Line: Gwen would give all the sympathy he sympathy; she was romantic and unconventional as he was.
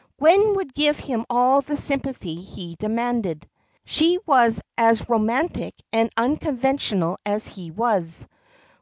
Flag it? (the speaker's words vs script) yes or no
yes